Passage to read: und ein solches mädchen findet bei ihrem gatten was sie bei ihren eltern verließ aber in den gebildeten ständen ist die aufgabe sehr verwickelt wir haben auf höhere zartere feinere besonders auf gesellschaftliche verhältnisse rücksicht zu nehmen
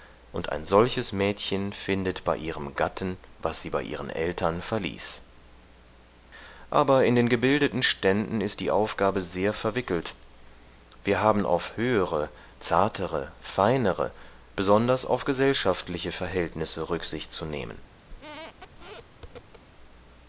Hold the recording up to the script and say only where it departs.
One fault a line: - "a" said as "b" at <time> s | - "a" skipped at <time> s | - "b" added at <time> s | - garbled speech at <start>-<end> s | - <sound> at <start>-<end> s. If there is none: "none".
- squeak at 18.1-19.6 s